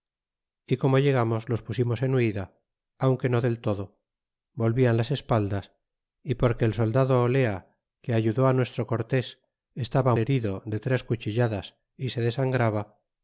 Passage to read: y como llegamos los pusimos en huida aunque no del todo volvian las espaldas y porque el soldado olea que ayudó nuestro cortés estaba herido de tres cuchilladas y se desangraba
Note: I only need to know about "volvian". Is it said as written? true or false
true